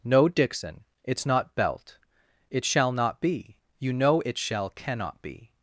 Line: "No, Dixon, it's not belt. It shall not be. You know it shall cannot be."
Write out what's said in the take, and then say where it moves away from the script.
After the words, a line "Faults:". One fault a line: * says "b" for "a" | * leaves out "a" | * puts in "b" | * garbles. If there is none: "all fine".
"No, Dixon, it's not belt. It shall not be. You know it shall cannot be."
Faults:
all fine